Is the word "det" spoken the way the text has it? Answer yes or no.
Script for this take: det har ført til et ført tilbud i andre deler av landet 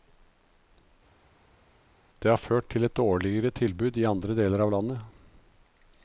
yes